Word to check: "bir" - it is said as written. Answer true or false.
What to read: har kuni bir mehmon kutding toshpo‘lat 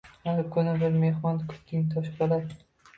true